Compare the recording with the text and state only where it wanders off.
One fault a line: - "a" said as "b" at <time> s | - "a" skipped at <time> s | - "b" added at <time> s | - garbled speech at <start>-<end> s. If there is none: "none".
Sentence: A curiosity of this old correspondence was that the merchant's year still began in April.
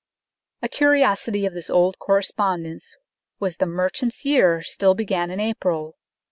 - "that" skipped at 3.6 s